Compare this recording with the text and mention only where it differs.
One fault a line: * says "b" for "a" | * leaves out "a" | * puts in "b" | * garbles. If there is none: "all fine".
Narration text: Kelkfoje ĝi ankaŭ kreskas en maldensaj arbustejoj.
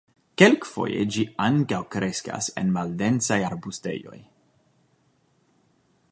all fine